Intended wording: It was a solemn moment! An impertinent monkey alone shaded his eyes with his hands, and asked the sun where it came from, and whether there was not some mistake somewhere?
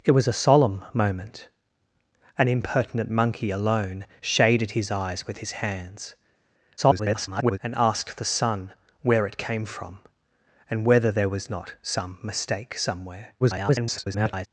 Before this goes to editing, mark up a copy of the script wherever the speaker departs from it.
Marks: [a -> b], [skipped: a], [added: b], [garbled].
It was a solemn moment! An impertinent monkey alone shaded his eyes with his hands, [garbled] and asked the sun where it came from, and whether there was not some mistake somewhere? [garbled]